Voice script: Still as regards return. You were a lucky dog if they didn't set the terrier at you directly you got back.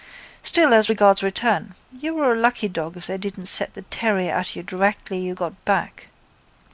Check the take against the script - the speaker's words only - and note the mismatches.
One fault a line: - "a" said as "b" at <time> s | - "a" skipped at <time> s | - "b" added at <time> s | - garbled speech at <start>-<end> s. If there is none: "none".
none